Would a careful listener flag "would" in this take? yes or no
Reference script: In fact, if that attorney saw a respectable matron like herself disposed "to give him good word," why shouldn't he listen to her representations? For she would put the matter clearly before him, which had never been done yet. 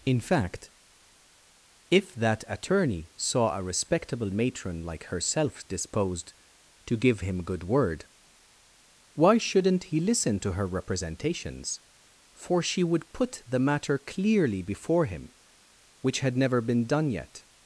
no